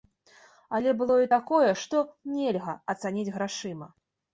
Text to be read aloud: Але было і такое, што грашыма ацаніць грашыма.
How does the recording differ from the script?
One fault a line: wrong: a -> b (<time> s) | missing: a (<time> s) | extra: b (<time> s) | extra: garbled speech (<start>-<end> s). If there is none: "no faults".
wrong: грашыма -> нельга (2.4 s)